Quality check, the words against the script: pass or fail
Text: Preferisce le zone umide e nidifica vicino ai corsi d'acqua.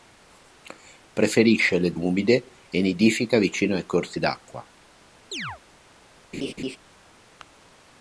fail